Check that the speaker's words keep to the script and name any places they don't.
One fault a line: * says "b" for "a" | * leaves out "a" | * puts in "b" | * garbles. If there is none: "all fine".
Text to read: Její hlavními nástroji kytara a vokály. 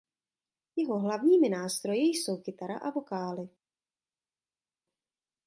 * says "Jeho" for "Její"
* puts in "jsou"